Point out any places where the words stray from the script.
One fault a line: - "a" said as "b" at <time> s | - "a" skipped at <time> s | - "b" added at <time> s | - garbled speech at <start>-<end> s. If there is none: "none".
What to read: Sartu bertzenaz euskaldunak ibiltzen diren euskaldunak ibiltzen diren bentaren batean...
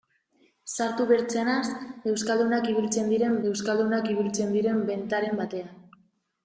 none